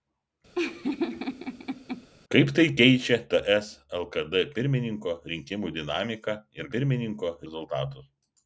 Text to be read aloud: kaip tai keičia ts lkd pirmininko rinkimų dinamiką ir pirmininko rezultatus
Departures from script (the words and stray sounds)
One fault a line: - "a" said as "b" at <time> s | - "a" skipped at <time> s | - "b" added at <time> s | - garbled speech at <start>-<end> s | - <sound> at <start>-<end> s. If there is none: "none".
- laugh at 0.5-2.1 s